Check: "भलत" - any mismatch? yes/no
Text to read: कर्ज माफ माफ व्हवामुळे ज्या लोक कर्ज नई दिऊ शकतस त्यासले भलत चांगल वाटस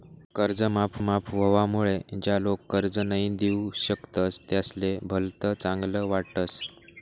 no